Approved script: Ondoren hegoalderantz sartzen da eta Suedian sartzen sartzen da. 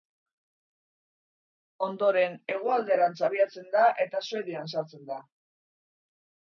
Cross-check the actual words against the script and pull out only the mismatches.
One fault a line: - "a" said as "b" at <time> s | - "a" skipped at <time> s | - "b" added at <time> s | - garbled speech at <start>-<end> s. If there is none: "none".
- "sartzen" said as "abiatzen" at 3.3 s
- "sartzen" skipped at 5.1 s